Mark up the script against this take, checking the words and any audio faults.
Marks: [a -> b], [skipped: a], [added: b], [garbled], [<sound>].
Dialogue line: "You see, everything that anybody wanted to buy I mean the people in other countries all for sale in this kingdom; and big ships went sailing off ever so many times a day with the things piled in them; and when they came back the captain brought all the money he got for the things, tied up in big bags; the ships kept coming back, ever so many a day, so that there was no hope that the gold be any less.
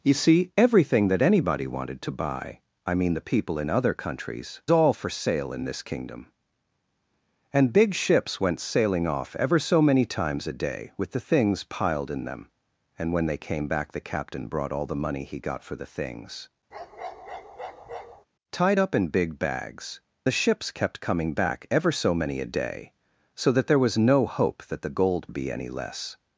"You see, everything that anybody wanted to buy I mean the people in other countries all for sale in this kingdom; and big ships went sailing off ever so many times a day with the things piled in them; and when they came back the captain brought all the money he got for the things, [bark] tied up in big bags; the ships kept coming back, ever so many a day, so that there was no hope that the gold be any less.